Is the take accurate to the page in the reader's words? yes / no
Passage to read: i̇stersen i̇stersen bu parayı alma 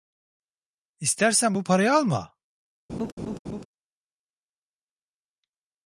no